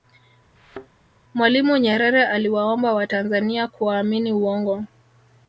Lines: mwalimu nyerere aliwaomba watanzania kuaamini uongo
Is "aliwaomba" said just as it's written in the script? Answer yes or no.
yes